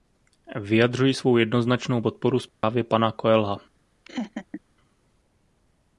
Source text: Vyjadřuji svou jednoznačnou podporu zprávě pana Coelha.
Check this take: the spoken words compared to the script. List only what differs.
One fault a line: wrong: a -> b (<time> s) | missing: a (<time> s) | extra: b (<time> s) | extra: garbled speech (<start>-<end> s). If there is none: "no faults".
no faults